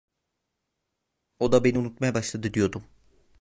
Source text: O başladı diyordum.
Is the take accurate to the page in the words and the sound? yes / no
no